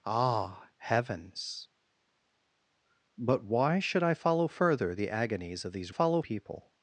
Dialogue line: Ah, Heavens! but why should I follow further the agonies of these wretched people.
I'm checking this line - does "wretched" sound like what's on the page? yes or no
no